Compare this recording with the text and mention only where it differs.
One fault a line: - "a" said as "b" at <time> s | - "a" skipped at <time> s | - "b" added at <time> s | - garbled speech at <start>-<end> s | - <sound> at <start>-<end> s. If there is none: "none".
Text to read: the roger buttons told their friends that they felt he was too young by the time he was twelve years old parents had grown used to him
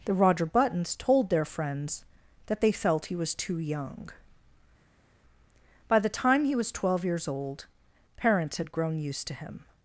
none